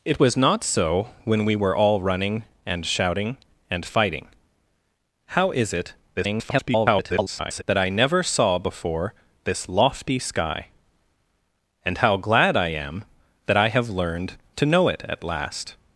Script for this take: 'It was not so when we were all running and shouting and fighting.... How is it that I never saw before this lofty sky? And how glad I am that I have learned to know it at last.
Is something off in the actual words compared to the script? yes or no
yes